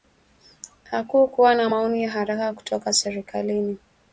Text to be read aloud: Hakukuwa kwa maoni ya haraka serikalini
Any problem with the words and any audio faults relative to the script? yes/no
yes